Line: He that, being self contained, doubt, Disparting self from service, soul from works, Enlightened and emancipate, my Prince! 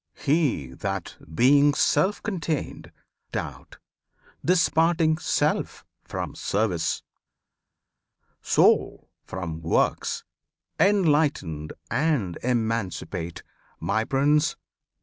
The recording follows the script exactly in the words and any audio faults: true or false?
true